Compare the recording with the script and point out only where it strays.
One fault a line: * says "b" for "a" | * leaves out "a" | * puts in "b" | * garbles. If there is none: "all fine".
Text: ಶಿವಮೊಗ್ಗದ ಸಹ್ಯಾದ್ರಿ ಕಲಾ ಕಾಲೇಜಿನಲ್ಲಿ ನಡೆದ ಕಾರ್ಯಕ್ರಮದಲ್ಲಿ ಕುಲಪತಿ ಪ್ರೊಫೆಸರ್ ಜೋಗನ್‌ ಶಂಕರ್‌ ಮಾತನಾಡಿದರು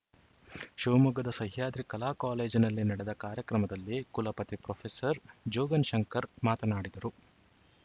all fine